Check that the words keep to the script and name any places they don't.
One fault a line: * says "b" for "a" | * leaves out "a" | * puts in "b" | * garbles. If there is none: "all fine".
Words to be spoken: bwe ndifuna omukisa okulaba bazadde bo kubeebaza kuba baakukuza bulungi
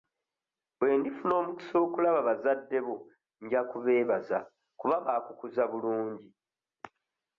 * puts in "nja"